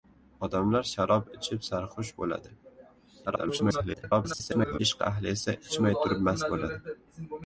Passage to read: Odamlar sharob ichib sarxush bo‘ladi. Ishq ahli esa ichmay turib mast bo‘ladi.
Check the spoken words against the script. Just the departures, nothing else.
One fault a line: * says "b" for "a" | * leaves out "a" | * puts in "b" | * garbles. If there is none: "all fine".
* garbles